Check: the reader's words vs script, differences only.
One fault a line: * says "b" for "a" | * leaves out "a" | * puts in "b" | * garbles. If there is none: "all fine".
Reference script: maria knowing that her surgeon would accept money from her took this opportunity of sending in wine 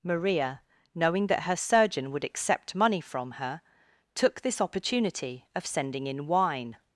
all fine